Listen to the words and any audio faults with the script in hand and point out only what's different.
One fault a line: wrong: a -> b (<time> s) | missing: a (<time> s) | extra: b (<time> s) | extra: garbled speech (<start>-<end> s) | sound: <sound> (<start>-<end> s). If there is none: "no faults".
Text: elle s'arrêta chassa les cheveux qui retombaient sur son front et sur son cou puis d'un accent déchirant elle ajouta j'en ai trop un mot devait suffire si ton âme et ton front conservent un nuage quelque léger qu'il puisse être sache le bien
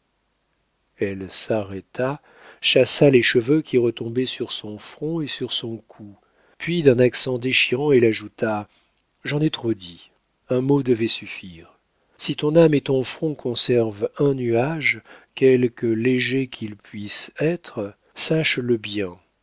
extra: dit (9.8 s)